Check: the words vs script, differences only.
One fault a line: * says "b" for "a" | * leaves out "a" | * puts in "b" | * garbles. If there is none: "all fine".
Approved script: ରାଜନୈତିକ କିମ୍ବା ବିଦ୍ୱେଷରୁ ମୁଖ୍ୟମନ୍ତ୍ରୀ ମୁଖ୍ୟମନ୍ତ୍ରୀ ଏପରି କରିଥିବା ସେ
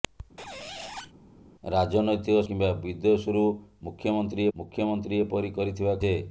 all fine